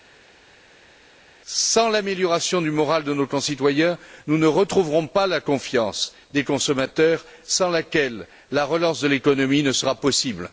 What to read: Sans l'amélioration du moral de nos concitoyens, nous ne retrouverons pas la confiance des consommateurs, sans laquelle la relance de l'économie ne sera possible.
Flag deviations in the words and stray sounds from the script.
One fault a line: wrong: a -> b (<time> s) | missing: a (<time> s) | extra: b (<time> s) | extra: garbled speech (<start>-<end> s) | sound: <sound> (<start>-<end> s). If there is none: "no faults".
no faults